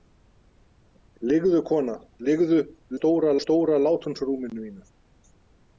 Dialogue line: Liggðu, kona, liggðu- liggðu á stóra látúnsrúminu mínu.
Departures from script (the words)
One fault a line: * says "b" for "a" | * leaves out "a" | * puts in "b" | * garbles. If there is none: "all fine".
* says "stóra" for "liggðu"